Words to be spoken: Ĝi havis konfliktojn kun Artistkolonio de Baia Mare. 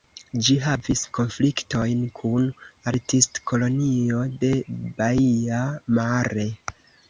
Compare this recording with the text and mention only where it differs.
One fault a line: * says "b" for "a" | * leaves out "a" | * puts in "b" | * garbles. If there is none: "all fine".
all fine